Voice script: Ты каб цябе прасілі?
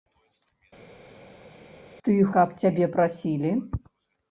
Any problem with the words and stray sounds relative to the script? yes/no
no